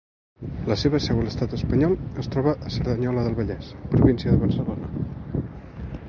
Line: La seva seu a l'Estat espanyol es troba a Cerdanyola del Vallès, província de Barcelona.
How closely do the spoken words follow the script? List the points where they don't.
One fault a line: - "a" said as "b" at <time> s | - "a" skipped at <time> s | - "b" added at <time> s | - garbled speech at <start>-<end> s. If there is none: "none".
none